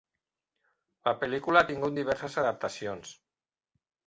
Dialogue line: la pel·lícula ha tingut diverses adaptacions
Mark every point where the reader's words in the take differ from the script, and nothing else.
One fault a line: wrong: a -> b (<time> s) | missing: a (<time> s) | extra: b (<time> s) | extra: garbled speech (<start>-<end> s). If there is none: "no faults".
no faults